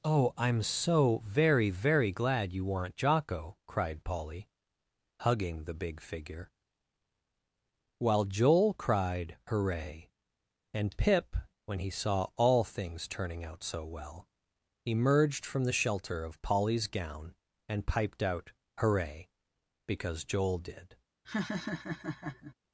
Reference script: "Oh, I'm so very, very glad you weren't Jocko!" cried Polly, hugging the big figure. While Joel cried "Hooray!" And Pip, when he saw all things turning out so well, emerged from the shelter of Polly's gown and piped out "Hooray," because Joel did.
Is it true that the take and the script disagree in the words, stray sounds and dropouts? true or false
true